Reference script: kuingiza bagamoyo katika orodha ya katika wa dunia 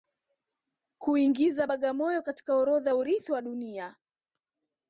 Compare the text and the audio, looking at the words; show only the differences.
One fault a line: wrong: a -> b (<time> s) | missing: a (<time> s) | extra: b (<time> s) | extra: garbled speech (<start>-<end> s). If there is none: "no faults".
wrong: katika -> urithi (2.9 s)